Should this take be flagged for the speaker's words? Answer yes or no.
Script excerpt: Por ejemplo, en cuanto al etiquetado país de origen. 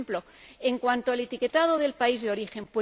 yes